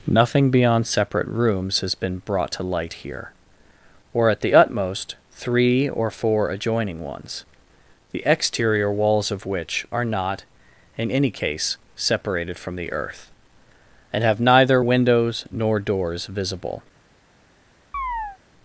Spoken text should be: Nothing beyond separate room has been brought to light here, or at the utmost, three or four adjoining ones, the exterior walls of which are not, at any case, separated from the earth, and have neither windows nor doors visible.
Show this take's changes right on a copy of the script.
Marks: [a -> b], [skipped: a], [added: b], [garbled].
Nothing beyond separate [room -> rooms] has been brought to light here, or at the utmost, three or four adjoining ones, the exterior walls of which are not, [at -> in] any case, separated from the earth, and have neither windows nor doors visible.